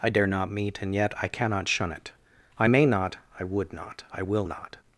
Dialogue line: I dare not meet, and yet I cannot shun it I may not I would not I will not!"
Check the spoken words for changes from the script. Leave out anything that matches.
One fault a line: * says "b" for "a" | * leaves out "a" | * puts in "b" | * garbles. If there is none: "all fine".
all fine